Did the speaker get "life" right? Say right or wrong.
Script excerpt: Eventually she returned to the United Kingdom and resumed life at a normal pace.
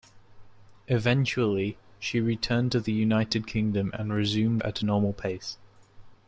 wrong